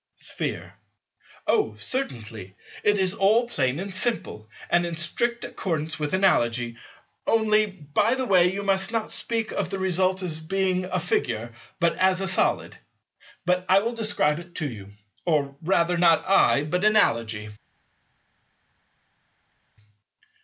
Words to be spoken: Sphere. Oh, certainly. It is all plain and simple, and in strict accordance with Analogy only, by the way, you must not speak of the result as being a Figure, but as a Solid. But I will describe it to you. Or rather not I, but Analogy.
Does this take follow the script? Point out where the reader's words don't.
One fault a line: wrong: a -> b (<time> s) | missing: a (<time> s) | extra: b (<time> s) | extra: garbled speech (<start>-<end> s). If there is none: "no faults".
no faults